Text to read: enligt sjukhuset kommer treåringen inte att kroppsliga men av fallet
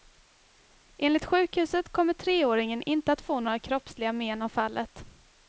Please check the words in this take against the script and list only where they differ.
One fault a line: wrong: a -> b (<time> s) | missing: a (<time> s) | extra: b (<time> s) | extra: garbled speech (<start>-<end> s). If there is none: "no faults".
extra: få några (3.2 s)